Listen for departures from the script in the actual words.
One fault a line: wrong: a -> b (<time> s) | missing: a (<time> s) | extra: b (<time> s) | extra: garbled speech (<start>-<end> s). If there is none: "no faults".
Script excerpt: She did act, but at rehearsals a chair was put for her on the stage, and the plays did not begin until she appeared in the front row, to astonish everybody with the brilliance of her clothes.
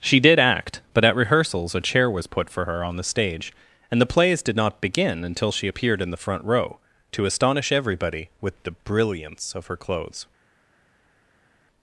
no faults